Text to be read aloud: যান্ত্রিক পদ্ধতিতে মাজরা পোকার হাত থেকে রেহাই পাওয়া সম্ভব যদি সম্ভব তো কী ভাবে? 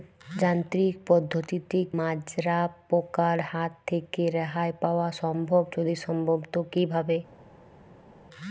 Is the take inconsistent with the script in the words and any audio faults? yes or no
no